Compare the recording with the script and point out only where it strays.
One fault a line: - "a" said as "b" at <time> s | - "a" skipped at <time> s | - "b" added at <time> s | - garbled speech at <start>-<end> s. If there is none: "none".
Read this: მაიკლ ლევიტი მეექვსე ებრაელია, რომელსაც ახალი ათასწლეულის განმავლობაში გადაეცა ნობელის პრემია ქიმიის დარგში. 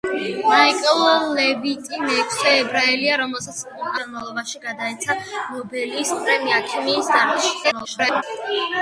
- "ახალი ათასწლეულის" skipped at 3.6 s
- garbled speech at 7.6-8.2 s